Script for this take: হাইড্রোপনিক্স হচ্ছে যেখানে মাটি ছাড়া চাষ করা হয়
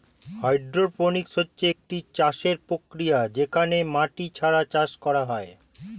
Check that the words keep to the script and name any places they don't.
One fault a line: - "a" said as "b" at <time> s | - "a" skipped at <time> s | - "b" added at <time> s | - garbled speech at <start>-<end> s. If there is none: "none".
- "একটি চাষের প্রক্রিয়া" added at 1.7 s